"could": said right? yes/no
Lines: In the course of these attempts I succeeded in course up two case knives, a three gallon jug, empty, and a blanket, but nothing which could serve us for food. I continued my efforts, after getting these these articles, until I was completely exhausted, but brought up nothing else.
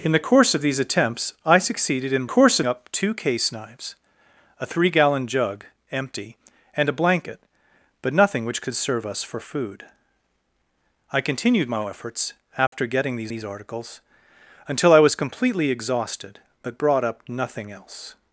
yes